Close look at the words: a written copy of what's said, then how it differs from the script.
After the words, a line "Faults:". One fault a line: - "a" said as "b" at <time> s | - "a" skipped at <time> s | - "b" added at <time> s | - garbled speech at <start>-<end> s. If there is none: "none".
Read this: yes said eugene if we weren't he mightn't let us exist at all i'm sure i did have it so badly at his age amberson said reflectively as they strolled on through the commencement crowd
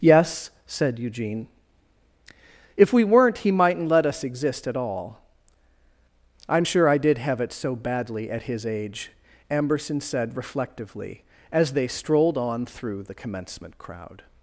yes said eugene if we weren't he mightn't let us exist at all i'm sure i did have it so badly at his age amberson said reflectively as they strolled on through the commencement crowd
Faults:
none